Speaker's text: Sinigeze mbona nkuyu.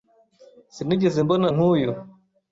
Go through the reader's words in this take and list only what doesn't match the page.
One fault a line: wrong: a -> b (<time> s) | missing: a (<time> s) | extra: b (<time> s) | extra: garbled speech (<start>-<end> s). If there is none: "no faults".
no faults